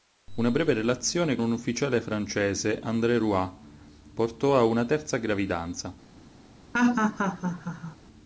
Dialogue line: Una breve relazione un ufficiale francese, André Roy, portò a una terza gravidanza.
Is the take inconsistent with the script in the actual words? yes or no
no